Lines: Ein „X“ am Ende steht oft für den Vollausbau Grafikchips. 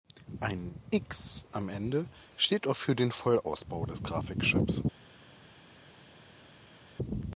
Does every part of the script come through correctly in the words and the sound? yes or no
no